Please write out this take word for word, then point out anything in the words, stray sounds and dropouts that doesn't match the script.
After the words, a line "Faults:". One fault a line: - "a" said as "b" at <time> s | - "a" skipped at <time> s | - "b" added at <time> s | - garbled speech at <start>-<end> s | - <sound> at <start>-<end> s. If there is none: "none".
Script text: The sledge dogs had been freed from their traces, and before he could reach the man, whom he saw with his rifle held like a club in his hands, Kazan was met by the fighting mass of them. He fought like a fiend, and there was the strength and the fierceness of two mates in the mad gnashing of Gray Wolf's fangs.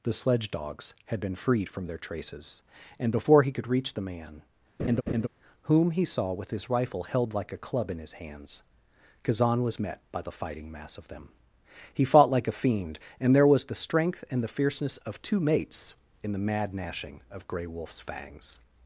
The sledge dogs had been freed from their traces, and before he could reach the man, whom he saw with his rifle held like a club in his hands, Kazan was met by the fighting mass of them. He fought like a fiend, and there was the strength and the fierceness of two mates in the mad gnashing of Gray Wolf's fangs.
Faults:
- laugh at 4.8-5.3 s